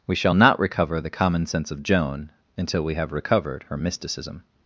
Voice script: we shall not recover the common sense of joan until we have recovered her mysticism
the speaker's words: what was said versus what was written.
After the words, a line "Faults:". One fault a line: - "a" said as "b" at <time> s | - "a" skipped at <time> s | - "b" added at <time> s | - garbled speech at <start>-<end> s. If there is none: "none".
we shall not recover the common sense of joan until we have recovered her mysticism
Faults:
none